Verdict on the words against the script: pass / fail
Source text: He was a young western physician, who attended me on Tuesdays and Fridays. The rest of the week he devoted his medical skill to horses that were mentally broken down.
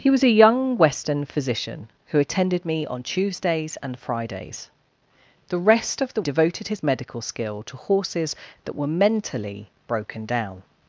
fail